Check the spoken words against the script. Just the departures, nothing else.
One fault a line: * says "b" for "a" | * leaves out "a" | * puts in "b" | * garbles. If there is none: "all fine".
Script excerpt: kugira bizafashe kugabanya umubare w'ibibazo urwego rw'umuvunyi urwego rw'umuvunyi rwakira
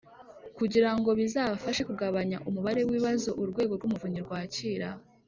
* puts in "ngo"
* leaves out "urwego rw'umuvunyi"